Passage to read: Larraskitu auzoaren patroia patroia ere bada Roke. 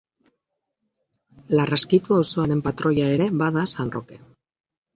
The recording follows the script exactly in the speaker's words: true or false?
false